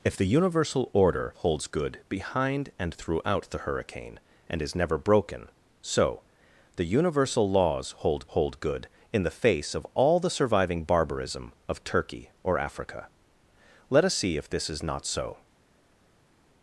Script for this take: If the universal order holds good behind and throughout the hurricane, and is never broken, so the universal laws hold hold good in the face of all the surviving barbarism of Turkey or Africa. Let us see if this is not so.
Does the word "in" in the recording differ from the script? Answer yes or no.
no